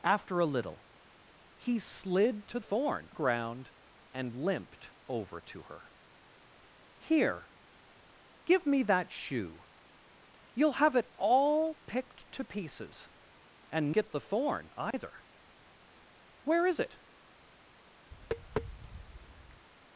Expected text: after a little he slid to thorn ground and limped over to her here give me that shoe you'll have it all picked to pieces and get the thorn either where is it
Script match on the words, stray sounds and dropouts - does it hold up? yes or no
no